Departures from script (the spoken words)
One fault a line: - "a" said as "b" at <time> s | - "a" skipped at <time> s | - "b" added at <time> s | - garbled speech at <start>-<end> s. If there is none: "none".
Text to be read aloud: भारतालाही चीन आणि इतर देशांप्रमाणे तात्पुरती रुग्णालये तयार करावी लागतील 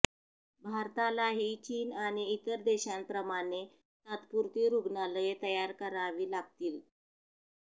none